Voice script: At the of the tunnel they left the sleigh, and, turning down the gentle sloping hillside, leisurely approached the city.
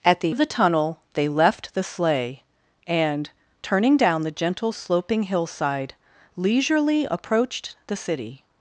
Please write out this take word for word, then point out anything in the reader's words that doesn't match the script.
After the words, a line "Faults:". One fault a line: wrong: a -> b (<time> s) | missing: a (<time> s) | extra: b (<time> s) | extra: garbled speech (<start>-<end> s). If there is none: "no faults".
At the of the tunnel they left the sleigh, and, turning down the gentle sloping hillside, leisurely approached the city.
Faults:
no faults